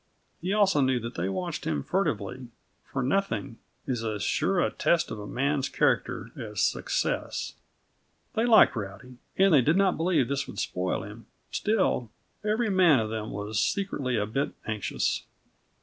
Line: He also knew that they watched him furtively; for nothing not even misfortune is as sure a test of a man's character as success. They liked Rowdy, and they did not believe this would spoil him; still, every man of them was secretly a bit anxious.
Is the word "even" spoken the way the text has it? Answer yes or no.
no